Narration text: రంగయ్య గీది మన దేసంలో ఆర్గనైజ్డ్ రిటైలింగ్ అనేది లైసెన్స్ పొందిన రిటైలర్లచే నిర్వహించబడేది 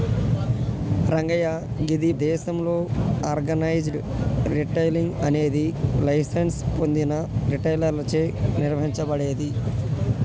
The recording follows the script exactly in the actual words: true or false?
false